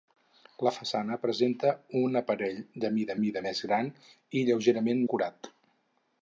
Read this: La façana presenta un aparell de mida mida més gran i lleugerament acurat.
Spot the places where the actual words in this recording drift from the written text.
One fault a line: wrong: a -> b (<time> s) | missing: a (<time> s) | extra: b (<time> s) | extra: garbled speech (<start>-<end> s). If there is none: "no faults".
no faults